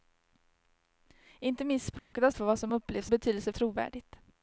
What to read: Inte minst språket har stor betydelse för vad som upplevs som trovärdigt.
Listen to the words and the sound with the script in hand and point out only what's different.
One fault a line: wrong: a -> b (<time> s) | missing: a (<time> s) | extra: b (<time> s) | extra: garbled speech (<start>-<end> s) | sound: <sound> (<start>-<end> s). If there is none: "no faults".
sound: dropout (2.0-2.1 s)
missing: stor betydelse (2.3 s)
wrong: som -> betydelse (3.1 s)